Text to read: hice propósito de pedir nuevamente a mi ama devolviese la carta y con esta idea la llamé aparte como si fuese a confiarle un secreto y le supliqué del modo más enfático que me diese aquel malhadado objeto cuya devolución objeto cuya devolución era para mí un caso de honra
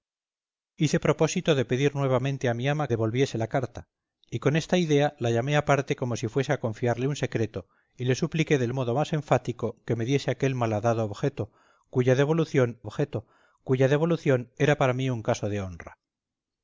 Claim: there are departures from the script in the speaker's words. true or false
false